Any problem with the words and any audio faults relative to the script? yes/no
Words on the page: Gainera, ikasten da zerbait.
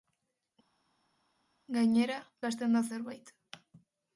no